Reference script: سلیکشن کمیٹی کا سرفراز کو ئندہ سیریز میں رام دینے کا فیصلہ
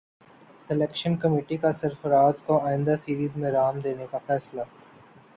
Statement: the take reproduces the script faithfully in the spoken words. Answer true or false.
true